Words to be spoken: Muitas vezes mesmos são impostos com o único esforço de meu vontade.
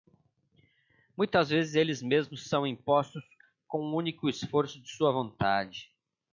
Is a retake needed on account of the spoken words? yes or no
yes